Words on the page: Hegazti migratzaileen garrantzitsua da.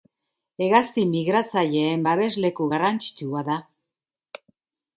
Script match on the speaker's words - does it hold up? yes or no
no